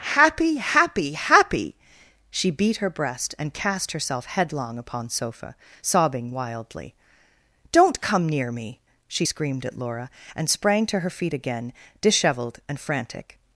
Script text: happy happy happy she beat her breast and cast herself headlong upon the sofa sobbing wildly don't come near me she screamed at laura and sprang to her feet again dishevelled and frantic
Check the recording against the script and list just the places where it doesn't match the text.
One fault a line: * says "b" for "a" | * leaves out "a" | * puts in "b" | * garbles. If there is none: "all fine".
* leaves out "the"